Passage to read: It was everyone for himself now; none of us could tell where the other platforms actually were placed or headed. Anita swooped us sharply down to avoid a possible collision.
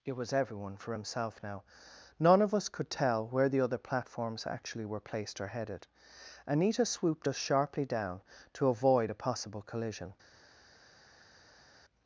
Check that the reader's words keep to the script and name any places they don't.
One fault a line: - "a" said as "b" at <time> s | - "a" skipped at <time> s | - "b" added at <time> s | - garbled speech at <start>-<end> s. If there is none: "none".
none